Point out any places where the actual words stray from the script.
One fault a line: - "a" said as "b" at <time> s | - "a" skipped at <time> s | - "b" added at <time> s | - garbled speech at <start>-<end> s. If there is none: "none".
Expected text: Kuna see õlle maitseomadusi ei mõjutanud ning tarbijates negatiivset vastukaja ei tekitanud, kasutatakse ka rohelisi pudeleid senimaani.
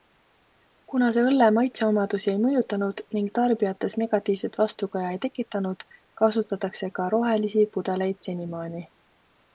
none